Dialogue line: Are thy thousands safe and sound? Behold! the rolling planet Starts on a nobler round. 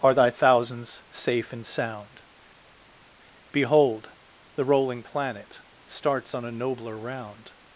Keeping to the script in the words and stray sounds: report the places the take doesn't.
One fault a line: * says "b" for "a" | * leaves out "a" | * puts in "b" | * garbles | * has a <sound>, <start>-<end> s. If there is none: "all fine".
all fine